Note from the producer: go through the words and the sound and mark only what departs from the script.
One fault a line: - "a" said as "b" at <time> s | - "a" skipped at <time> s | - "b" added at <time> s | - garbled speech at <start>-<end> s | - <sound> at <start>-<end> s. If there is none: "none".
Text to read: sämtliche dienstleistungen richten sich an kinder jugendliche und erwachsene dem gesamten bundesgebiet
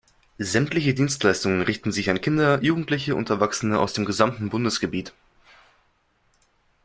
- "aus" added at 3.8 s